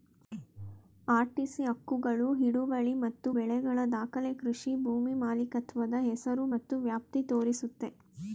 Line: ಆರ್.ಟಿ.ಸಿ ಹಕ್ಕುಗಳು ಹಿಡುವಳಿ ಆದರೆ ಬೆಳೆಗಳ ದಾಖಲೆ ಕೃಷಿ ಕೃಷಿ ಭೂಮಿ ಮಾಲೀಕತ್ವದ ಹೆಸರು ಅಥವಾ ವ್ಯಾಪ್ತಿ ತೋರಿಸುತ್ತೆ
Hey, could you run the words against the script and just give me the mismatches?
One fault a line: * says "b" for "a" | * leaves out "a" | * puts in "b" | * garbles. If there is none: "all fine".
* says "ಮತ್ತು" for "ಆದರೆ"
* leaves out "ಕೃಷಿ"
* says "ಮತ್ತು" for "ಅಥವಾ"